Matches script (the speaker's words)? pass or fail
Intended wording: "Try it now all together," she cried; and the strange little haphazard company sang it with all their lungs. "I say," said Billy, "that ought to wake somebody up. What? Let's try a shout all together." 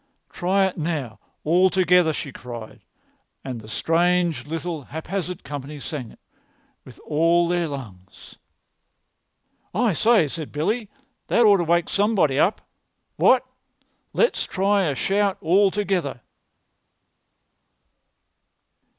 pass